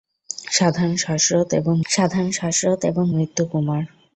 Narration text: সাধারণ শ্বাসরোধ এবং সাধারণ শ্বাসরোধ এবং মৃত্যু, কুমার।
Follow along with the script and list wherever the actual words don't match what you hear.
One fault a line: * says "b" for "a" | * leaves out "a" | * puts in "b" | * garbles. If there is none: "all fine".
all fine